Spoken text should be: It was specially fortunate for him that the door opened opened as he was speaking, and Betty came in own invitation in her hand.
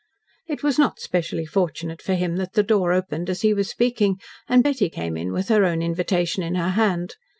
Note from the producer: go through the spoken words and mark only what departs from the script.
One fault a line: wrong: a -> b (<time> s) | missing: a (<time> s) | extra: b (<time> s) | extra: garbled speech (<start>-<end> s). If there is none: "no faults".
extra: not (0.8 s)
missing: opened (3.3 s)
extra: with her (5.3 s)